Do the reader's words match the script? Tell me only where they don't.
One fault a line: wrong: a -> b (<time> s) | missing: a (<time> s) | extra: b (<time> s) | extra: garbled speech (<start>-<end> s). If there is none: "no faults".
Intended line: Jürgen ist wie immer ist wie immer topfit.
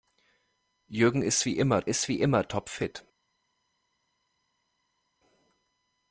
no faults